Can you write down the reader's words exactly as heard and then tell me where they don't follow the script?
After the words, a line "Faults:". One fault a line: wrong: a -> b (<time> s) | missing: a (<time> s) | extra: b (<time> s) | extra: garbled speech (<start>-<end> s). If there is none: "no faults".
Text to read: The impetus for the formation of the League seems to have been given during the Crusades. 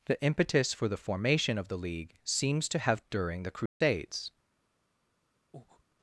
The impetus for the formation of the League seems to have during the Crusades.
Faults:
missing: been given (3.0 s)